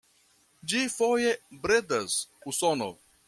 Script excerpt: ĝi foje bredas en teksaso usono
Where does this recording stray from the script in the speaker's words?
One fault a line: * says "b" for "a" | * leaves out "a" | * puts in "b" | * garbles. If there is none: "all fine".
* leaves out "en teksaso"